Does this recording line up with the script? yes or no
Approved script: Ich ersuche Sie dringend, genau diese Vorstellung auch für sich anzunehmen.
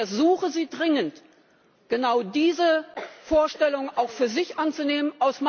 yes